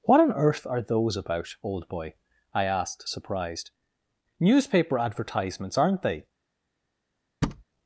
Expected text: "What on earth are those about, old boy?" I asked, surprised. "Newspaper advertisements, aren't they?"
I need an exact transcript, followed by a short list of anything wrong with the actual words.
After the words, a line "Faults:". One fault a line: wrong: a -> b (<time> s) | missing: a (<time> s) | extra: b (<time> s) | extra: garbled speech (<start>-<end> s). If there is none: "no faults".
"What on earth are those about, old boy?" I asked, surprised. "Newspaper advertisements, aren't they?"
Faults:
no faults